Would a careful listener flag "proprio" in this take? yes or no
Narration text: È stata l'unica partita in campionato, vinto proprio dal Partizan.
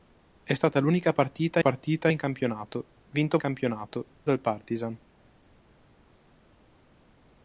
yes